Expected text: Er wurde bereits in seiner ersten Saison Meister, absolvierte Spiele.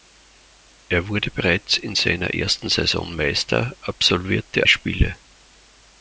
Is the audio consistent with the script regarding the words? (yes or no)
yes